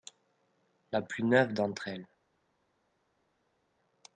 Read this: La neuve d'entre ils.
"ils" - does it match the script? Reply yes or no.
no